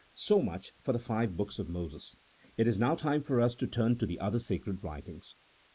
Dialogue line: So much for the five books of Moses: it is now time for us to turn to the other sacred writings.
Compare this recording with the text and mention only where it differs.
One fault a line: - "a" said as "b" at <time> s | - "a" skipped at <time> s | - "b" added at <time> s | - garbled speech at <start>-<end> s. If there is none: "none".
none